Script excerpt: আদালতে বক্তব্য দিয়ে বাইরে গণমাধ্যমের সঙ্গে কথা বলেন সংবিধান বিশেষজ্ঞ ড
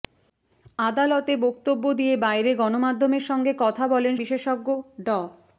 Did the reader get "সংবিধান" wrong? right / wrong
wrong